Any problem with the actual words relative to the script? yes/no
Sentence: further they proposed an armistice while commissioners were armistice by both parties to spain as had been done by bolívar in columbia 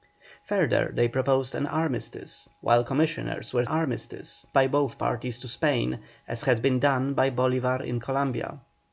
no